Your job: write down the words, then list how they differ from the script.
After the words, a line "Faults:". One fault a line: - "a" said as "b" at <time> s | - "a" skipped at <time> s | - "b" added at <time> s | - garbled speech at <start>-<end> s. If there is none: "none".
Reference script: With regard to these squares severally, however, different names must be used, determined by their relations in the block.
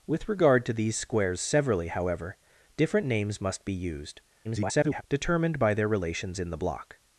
With regard to these squares severally, however, different names must be used, [garbled] determined by their relations in the block.
Faults:
- garbled speech at 4.4-5.0 s